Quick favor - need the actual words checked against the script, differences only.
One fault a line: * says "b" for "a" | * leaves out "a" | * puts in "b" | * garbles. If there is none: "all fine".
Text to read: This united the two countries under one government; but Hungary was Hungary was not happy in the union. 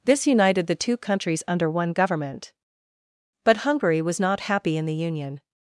* leaves out "Hungary was"